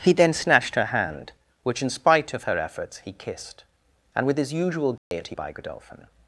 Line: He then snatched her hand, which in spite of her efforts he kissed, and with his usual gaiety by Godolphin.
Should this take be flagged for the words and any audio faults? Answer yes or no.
yes